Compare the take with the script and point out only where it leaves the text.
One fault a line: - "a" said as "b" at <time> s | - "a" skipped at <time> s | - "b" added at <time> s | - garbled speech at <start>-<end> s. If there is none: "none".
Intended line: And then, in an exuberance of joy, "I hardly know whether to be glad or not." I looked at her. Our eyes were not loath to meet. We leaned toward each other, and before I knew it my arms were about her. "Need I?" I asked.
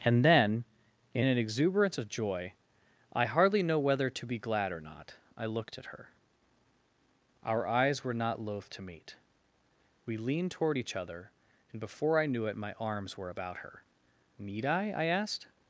none